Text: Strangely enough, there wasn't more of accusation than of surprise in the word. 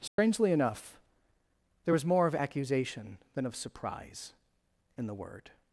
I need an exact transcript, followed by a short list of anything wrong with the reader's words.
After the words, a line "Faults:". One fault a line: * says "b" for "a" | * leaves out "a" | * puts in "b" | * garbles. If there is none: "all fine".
Strangely enough, there was more of accusation than of surprise in the word.
Faults:
* says "was" for "wasn't"